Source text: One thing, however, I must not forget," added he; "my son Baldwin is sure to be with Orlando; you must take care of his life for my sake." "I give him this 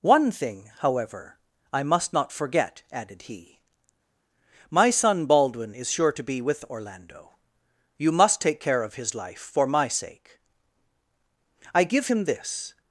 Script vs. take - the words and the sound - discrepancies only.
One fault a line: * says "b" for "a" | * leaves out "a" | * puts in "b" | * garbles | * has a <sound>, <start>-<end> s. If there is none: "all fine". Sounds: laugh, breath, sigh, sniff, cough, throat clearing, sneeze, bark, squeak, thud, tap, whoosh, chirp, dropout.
all fine